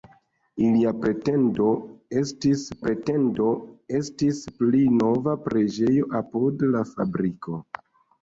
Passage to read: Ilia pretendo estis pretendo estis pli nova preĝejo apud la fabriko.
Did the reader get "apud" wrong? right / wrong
right